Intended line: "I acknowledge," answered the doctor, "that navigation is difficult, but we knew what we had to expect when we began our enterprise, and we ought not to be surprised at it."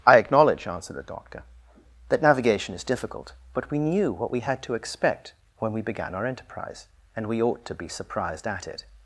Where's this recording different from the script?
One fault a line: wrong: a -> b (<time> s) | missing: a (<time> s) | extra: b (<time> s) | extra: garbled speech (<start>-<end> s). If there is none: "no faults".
missing: not (7.7 s)